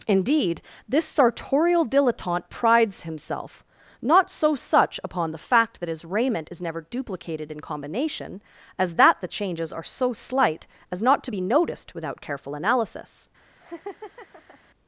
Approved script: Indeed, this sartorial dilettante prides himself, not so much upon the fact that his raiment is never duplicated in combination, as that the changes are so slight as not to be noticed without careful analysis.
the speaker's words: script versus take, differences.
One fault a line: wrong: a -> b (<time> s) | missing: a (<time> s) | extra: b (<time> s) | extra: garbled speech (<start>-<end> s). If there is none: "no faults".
wrong: much -> such (4.5 s)